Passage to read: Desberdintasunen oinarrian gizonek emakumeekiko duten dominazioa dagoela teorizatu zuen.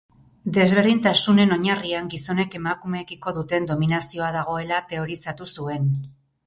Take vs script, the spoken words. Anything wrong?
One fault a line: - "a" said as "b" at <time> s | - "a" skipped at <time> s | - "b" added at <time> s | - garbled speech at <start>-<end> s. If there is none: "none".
none